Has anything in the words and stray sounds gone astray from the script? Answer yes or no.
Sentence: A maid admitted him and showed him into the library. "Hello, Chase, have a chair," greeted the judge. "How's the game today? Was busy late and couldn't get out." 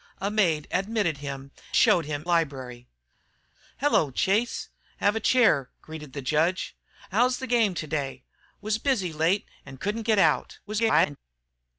yes